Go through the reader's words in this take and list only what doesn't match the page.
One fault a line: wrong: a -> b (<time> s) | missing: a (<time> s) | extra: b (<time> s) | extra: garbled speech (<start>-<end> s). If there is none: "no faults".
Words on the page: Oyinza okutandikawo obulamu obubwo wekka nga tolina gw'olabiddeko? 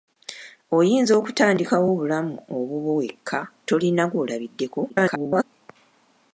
missing: nga (3.4 s)
extra: garbled speech (4.9-5.4 s)